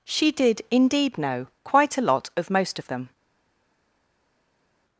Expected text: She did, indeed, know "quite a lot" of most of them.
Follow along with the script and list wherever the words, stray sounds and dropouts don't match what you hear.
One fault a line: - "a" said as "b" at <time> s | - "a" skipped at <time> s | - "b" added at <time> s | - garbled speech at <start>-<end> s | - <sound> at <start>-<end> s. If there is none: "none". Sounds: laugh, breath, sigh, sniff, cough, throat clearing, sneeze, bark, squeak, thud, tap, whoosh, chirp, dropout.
none